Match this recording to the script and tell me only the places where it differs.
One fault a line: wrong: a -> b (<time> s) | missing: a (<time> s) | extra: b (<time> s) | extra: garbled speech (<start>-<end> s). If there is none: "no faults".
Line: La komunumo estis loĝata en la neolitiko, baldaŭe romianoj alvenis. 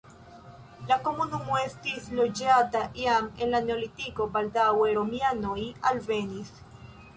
extra: jam (3.0 s)